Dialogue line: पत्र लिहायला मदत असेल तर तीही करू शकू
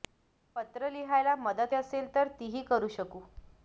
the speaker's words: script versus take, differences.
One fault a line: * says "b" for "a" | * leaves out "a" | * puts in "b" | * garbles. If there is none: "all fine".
all fine